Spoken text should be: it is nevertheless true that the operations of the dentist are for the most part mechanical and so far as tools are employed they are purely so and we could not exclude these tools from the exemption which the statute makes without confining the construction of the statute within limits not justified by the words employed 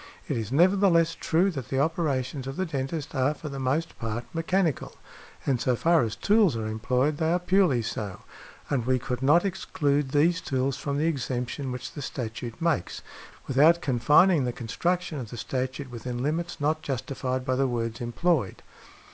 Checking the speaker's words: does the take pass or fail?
pass